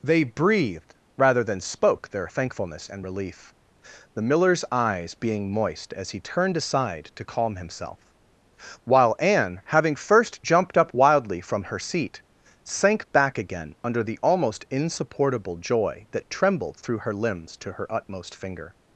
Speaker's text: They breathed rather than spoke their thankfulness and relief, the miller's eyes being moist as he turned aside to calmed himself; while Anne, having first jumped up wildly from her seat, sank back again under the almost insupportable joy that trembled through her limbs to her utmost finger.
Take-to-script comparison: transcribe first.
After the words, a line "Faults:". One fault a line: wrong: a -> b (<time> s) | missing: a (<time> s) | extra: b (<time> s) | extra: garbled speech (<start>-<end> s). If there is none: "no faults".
They breathed rather than spoke their thankfulness and relief, the miller's eyes being moist as he turned aside to calm himself; while Anne, having first jumped up wildly from her seat, sank back again under the almost insupportable joy that trembled through her limbs to her utmost finger.
Faults:
wrong: calmed -> calm (7.2 s)